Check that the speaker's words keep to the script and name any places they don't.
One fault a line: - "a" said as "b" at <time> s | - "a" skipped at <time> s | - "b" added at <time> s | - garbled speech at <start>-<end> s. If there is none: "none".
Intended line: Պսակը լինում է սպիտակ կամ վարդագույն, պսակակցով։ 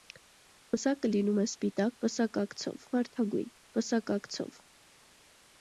- "կամ" said as "պսակակցով" at 2.1 s